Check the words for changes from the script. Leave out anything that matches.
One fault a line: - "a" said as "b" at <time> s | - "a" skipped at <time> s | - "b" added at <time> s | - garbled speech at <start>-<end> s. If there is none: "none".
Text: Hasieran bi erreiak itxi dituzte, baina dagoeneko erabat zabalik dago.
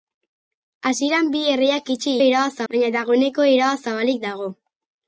- "dituzte" said as "erabat" at 2.2 s